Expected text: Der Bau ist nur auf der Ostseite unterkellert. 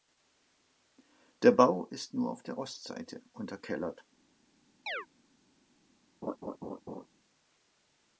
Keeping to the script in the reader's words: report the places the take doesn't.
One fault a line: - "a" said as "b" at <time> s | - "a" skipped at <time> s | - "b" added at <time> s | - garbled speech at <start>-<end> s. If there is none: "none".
none